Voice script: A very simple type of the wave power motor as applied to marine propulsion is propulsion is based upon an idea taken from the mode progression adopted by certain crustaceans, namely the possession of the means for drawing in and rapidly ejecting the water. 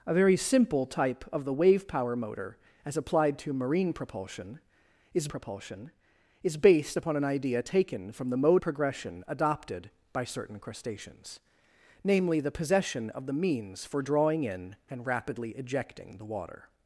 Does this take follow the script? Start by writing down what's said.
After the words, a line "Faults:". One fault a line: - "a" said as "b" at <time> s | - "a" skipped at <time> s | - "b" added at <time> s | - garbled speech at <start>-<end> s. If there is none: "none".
A very simple type of the wave power motor as applied to marine propulsion is propulsion is based upon an idea taken from the mode progression adopted by certain crustaceans, namely the possession of the means for drawing in and rapidly ejecting the water.
Faults:
none